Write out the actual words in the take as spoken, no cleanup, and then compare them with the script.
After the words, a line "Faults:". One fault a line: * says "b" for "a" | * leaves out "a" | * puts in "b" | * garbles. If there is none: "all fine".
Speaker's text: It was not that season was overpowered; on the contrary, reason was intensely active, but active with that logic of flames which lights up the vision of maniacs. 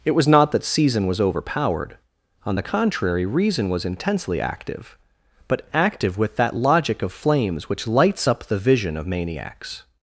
It was not that season was overpowered; on the contrary, reason was intensely active, but active with that logic of flames which lights up the vision of maniacs.
Faults:
all fine